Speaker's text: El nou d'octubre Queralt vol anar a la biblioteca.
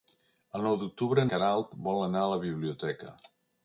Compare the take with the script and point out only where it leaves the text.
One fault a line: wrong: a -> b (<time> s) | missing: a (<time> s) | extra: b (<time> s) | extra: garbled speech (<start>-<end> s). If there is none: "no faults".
no faults